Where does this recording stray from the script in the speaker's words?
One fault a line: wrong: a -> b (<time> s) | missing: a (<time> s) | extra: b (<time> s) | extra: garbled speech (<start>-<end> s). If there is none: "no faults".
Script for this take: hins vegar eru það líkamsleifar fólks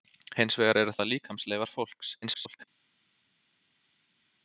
extra: garbled speech (2.2-2.7 s)